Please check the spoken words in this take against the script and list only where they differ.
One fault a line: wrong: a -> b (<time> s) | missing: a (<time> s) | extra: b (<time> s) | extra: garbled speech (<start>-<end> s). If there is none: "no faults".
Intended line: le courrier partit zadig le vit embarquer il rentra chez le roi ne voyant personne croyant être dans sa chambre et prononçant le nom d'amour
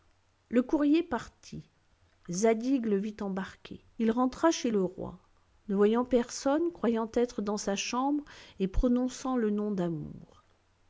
no faults